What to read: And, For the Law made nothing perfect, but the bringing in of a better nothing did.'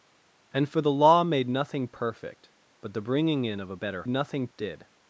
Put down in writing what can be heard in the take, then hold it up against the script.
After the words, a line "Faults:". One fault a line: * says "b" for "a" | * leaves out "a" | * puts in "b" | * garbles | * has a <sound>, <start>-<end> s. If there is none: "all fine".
And, For the Law made nothing perfect, but the bringing in of a better nothing did.'
Faults:
all fine